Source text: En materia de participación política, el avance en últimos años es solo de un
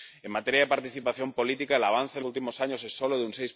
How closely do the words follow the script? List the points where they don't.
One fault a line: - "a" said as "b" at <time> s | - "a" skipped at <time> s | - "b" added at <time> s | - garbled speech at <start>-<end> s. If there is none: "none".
none